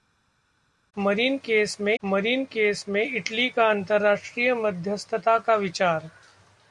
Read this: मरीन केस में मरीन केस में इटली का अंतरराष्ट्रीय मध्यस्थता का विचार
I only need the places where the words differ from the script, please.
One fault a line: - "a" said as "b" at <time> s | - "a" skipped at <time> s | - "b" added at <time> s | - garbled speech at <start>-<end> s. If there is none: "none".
none